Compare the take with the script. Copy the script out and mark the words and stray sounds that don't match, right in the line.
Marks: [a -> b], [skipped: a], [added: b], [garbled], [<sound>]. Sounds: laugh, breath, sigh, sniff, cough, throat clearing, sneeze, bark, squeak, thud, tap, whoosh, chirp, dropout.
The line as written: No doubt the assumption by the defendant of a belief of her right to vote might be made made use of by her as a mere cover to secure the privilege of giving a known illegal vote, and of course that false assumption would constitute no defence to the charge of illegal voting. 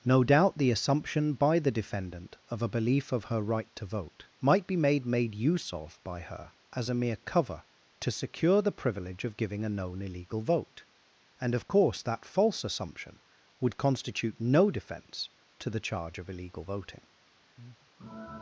No doubt the assumption by the defendant of a belief of her right to vote might be made made use of by her as a mere cover to secure the privilege of giving a known illegal vote, and of course that false assumption would constitute no defence to the charge of illegal voting. [breath]